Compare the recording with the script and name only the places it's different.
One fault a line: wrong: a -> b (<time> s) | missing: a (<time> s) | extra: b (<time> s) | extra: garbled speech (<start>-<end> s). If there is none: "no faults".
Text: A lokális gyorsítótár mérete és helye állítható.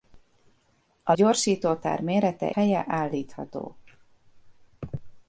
missing: lokális (1.1 s)
missing: és (2.5 s)